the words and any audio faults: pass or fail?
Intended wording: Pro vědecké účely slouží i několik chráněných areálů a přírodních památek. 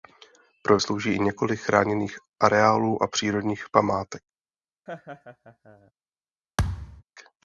fail